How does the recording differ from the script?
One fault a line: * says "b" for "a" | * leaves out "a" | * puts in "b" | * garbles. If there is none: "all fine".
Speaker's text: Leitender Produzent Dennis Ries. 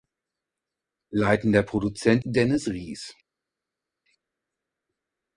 all fine